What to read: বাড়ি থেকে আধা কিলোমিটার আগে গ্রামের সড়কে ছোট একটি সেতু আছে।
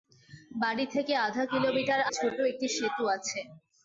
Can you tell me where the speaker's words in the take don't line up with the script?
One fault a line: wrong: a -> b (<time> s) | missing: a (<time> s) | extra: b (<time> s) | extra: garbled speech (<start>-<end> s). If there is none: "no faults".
missing: আগে গ্রামের সড়কে (2.0 s)